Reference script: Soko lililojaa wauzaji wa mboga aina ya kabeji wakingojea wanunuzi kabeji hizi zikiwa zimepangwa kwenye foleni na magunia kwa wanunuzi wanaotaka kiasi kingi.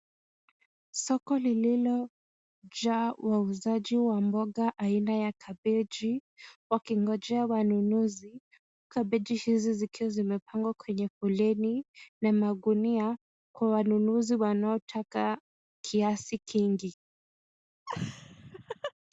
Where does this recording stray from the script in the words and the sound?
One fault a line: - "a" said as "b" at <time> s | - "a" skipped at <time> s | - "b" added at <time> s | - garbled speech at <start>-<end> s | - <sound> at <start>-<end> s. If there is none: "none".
- laugh at 17.9-18.9 s